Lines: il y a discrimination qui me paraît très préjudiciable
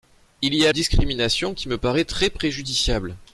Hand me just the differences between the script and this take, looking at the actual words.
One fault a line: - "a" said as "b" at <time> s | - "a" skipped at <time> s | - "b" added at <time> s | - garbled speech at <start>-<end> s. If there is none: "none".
none